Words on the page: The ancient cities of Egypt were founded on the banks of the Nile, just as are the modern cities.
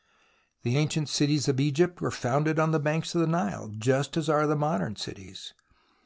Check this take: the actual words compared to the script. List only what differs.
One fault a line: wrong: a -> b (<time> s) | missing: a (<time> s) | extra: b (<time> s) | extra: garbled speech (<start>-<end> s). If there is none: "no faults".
no faults